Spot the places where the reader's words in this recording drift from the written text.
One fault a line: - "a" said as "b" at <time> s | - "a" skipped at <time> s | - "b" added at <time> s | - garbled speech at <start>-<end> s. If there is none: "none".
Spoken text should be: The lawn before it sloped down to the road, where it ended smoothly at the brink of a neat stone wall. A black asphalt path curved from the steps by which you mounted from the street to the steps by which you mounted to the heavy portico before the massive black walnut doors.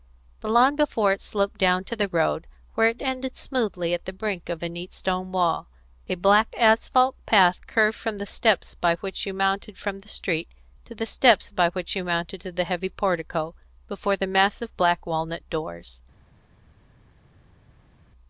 none